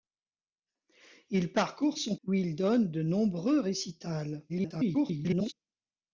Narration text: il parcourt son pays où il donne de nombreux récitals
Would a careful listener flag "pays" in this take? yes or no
yes